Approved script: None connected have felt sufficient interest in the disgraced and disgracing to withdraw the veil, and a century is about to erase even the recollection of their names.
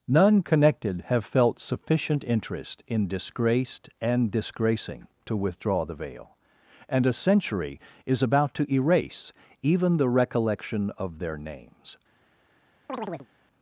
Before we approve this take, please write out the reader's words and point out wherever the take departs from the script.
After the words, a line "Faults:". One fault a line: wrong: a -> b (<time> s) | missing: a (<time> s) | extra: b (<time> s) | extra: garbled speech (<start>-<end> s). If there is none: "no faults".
None connected have felt sufficient interest in disgraced and disgracing to withdraw the veil, and a century is about to erase even the recollection of their names.
Faults:
missing: the (3.1 s)